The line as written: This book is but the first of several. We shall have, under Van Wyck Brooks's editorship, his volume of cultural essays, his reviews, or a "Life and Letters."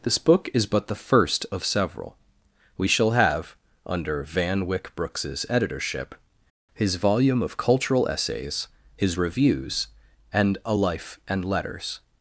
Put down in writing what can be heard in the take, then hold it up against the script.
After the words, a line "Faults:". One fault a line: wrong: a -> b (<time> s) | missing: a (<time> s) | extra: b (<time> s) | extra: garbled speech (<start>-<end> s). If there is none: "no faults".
This book is but the first of several. We shall have, under Van Wyck Brooks's editorship, his volume of cultural essays, his reviews, and a "Life and Letters."
Faults:
wrong: or -> and (10.3 s)